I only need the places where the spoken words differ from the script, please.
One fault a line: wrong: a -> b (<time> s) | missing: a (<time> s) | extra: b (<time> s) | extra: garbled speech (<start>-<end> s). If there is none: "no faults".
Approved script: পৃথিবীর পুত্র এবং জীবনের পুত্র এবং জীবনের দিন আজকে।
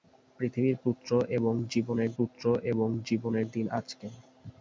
no faults